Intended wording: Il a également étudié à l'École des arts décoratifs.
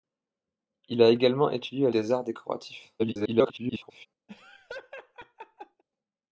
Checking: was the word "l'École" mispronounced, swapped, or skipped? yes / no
yes